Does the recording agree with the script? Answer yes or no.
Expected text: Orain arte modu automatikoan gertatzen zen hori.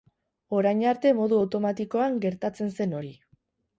yes